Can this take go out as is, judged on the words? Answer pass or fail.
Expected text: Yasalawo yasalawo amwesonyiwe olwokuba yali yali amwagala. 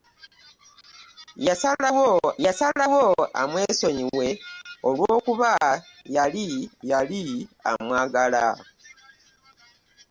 pass